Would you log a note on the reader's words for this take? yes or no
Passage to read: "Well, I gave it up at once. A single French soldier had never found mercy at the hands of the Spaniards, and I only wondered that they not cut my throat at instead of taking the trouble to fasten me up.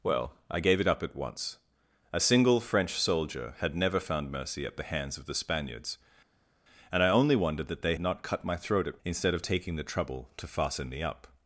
no